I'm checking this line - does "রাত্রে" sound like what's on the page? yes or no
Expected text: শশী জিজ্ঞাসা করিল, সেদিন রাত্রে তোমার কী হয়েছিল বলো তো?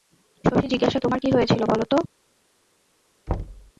no